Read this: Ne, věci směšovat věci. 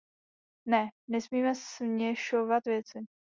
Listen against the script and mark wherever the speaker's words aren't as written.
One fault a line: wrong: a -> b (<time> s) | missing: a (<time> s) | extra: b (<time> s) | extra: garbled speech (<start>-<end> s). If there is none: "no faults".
wrong: věci -> nesmíme (1.1 s)